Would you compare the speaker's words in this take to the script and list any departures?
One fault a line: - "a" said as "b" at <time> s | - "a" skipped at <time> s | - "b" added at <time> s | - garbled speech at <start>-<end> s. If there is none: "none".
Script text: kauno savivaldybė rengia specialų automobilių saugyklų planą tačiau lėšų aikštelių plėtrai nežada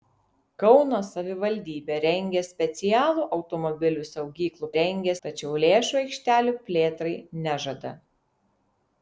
- "planą" said as "rengia" at 4.8 s